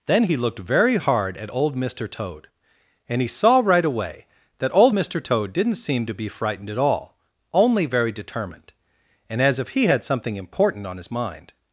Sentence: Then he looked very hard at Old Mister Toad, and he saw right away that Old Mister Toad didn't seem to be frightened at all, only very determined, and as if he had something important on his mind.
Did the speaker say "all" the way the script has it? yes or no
yes